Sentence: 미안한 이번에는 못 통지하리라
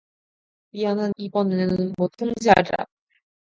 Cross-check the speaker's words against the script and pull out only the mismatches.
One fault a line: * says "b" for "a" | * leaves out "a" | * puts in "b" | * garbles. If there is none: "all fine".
all fine